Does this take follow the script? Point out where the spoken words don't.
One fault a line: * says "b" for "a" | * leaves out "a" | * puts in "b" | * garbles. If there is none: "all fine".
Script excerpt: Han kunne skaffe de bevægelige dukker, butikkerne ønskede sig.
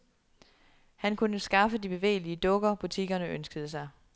all fine